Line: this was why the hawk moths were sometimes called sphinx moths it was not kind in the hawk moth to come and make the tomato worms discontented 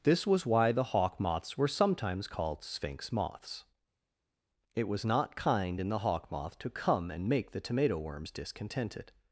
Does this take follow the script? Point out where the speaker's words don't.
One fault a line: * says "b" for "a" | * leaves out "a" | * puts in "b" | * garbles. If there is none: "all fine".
all fine